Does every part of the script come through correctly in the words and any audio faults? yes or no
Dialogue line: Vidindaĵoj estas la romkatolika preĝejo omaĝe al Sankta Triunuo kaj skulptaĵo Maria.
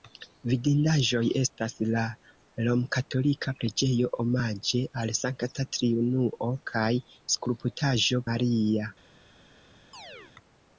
no